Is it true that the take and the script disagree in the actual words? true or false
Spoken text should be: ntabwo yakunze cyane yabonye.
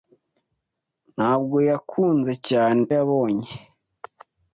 false